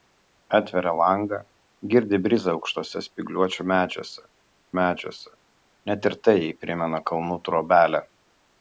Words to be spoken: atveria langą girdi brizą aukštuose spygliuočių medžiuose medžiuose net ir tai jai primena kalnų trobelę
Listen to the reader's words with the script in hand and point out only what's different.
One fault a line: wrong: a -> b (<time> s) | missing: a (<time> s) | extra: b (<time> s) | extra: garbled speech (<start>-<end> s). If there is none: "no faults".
no faults